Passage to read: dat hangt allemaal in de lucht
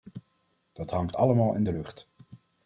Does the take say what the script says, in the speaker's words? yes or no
yes